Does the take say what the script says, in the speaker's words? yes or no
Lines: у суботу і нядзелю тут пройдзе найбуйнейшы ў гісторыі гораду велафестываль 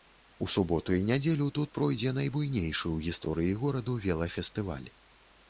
yes